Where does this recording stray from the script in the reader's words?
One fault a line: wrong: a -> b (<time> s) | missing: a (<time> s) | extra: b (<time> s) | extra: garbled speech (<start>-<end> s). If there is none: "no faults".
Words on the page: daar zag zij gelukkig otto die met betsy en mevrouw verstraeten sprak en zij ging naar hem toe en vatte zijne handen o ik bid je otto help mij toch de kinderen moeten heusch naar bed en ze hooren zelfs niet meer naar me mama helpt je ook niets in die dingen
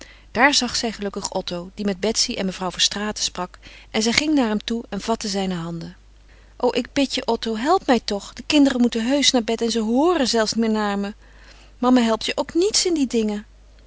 missing: niet (10.5 s)